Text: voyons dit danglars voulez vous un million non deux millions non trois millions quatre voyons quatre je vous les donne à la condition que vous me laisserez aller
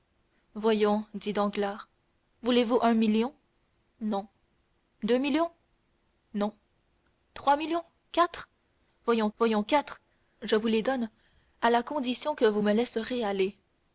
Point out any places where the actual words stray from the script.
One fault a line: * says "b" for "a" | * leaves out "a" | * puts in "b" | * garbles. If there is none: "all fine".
* puts in "voyons"